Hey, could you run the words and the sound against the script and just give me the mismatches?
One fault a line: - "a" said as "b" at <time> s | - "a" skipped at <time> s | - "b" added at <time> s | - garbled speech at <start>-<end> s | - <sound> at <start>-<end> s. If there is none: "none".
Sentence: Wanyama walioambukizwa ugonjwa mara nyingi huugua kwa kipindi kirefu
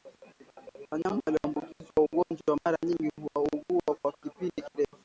none